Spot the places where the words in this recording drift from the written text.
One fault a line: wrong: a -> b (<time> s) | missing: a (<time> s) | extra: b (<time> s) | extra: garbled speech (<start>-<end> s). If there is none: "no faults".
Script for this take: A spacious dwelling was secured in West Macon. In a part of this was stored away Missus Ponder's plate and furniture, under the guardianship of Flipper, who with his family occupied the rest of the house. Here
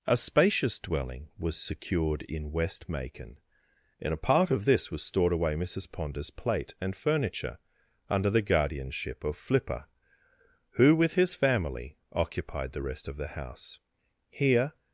no faults